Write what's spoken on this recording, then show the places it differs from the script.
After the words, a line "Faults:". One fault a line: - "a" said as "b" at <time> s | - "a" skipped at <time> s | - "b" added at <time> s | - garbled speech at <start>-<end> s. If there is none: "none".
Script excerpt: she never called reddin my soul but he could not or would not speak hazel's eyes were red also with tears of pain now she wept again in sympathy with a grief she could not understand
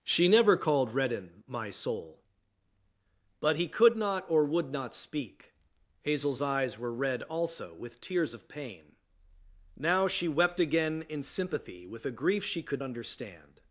she never called reddin my soul but he could not or would not speak hazel's eyes were red also with tears of pain now she wept again in sympathy with a grief she could understand
Faults:
- "not" skipped at 12.8 s